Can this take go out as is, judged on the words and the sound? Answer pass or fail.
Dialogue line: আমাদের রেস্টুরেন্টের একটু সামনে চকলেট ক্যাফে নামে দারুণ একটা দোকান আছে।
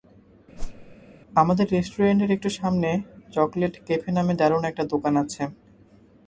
fail